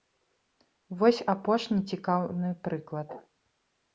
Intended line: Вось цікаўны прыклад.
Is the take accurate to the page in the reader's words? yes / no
no